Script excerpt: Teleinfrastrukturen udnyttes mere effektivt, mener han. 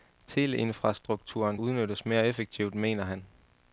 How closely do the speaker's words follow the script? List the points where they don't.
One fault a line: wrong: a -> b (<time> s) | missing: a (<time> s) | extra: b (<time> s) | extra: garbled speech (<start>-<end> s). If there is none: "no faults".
no faults